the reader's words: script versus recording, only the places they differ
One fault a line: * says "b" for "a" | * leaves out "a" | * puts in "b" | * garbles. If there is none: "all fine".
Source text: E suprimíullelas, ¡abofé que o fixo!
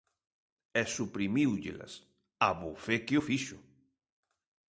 all fine